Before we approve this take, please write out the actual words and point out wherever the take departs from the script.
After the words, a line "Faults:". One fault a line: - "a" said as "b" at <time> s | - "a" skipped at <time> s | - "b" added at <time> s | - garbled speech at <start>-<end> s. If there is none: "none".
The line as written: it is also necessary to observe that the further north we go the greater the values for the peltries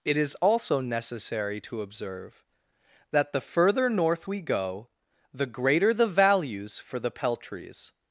it is also necessary to observe that the further north we go the greater the values for the peltries
Faults:
none